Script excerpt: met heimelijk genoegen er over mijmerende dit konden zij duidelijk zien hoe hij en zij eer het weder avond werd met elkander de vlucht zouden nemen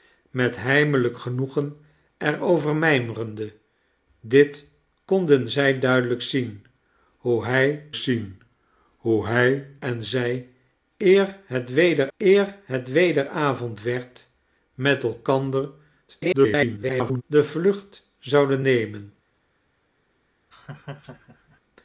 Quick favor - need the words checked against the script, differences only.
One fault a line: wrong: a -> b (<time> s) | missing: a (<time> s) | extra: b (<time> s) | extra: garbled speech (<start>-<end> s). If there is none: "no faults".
extra: zien hoe hij (7.9 s)
extra: eer het weder (12.2 s)
extra: garbled speech (16.1-17.2 s)